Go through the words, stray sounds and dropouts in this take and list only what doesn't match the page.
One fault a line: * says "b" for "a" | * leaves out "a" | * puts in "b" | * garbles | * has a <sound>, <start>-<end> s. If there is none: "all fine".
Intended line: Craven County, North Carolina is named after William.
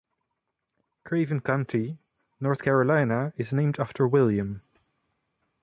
all fine